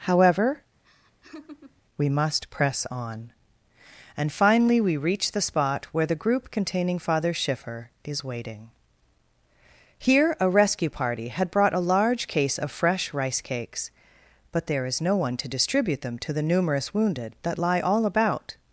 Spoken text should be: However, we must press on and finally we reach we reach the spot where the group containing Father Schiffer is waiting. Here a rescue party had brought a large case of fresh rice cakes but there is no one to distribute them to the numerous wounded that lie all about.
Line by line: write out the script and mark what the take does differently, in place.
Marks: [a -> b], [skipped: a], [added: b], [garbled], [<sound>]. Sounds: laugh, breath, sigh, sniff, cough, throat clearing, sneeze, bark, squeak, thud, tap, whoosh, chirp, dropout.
However, [laugh] we must press on and finally we reach [skipped: we reach] the spot where the group containing Father Schiffer is waiting. Here a rescue party had brought a large case of fresh rice cakes but there is no one to distribute them to the numerous wounded that lie all about.